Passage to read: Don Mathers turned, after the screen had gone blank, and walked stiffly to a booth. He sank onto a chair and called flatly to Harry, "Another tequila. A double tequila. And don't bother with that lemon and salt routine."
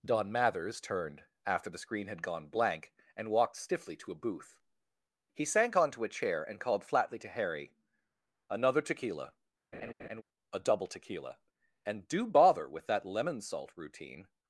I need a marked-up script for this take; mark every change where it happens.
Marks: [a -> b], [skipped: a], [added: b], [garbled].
Don Mathers turned, after the screen had gone blank, and walked stiffly to a booth. He sank onto a chair and called flatly to Harry, "Another tequila. A double tequila. And [don't -> do] bother with that lemon [skipped: and] salt routine."